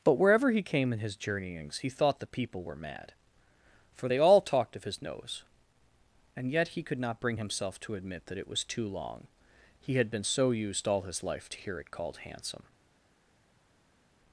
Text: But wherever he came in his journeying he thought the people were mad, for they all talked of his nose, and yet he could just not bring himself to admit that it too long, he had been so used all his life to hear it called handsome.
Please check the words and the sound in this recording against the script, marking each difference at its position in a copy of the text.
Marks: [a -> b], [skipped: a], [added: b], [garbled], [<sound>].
But wherever he came in his [journeying -> journeyings] he thought the people were mad, for they all talked of his nose, and yet he could [skipped: just] not bring himself to admit that it [added: was] too long, he had been so used all his life to hear it called handsome.